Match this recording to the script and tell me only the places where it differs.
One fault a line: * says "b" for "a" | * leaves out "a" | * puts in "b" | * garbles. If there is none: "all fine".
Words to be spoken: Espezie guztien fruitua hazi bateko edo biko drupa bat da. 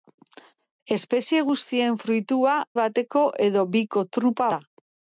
* leaves out "hazi"
* leaves out "bat"